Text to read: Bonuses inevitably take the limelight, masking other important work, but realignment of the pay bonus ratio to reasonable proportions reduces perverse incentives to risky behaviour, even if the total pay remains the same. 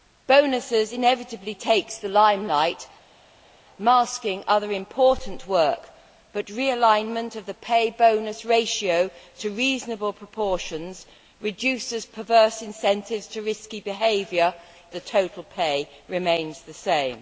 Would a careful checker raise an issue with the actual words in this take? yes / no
yes